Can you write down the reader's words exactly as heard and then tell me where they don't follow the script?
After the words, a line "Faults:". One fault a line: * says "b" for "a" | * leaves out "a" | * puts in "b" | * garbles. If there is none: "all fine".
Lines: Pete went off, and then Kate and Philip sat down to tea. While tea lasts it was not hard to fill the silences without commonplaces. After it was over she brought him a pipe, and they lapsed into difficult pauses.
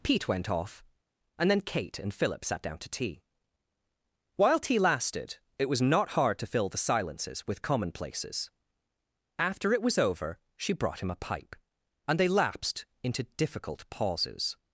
Pete went off, and then Kate and Philip sat down to tea. While tea lasted it was not hard to fill the silences with commonplaces. After it was over she brought him a pipe, and they lapsed into difficult pauses.
Faults:
* says "lasted" for "lasts"
* says "with" for "without"